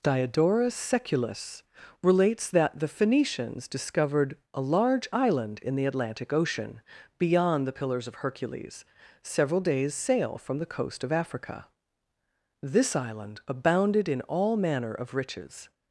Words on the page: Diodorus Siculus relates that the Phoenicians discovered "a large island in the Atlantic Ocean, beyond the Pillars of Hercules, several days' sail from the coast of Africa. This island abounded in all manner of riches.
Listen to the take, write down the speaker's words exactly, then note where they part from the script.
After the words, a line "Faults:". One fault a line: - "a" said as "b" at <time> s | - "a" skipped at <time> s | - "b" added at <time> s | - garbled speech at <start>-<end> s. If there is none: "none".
Diodorus Siculus relates that the Phoenicians discovered "a large island in the Atlantic Ocean, beyond the Pillars of Hercules, several days' sail from the coast of Africa. This island abounded in all manner of riches.
Faults:
none